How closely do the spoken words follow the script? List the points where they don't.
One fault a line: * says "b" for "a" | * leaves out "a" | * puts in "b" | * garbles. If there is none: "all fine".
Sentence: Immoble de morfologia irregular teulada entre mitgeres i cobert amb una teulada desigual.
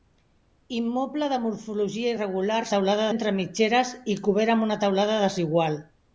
all fine